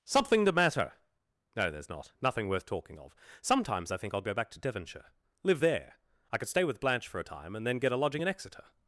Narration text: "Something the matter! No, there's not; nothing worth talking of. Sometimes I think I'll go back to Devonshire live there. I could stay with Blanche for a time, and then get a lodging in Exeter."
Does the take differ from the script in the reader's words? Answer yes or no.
no